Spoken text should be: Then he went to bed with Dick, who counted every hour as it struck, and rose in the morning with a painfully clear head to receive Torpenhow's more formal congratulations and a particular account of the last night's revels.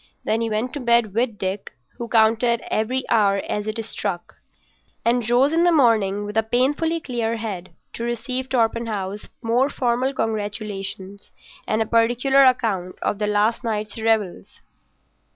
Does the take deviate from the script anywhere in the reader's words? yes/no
no